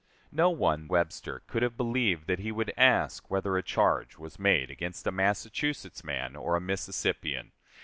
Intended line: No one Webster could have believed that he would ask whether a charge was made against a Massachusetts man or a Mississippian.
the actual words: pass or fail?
pass